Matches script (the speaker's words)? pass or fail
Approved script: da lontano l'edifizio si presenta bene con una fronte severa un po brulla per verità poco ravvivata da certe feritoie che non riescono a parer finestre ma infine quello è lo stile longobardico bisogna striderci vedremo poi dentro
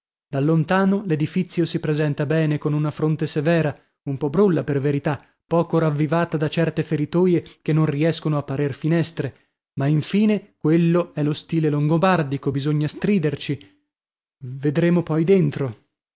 pass